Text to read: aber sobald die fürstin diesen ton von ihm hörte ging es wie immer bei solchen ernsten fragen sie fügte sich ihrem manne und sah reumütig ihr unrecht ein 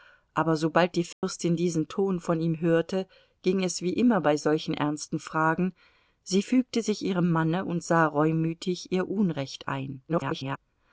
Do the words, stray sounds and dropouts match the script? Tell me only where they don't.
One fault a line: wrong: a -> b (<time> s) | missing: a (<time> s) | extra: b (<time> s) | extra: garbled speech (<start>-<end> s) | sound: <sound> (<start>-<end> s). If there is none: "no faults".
sound: dropout (1.1-1.2 s)
extra: garbled speech (10.1-10.6 s)